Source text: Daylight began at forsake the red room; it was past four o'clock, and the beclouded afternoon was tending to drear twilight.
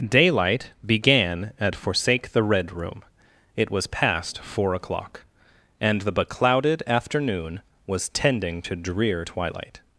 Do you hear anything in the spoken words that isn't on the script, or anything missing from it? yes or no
no